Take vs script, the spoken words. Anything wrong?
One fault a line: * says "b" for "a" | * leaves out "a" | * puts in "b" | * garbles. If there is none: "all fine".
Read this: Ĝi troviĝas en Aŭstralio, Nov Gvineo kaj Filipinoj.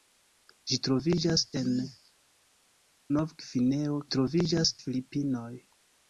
* leaves out "Aŭstralio"
* says "troviĝas" for "kaj"